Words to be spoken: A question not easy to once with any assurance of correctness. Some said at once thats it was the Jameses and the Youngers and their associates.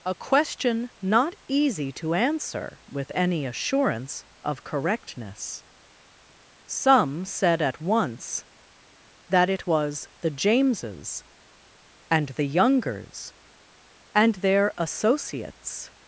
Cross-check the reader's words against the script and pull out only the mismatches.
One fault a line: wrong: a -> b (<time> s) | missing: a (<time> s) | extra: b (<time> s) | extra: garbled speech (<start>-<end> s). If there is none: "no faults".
wrong: once -> answer (2.1 s)
wrong: thats -> that (9.3 s)